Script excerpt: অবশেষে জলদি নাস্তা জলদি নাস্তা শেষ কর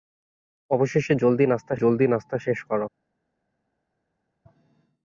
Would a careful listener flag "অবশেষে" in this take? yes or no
no